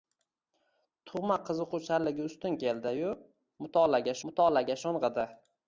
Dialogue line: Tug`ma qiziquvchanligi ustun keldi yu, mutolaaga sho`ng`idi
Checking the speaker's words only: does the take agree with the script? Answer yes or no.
no